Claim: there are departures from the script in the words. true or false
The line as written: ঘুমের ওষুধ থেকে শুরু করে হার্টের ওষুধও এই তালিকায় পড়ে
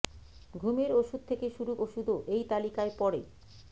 true